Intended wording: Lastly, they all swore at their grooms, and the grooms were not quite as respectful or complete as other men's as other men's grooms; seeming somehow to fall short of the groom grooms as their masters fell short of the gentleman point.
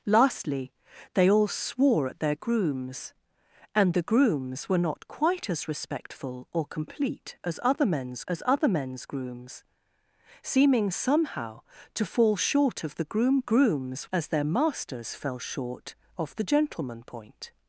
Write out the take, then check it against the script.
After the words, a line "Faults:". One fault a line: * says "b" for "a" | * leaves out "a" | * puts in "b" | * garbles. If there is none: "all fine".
Lastly, they all swore at their grooms, and the grooms were not quite as respectful or complete as other men's as other men's grooms; seeming somehow to fall short of the groom grooms as their masters fell short of the gentleman point.
Faults:
all fine